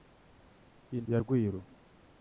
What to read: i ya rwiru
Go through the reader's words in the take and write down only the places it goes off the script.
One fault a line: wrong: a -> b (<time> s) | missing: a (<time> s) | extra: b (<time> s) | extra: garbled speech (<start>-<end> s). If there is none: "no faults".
no faults